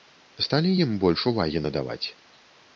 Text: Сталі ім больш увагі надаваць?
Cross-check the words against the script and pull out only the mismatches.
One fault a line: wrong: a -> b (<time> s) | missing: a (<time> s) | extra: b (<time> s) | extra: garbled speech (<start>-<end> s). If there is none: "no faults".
no faults